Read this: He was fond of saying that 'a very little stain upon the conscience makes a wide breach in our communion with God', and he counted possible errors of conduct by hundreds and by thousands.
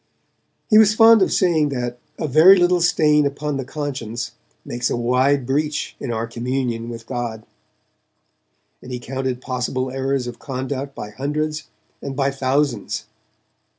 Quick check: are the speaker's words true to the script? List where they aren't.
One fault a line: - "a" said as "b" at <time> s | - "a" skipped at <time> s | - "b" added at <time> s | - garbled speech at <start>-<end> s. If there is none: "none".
none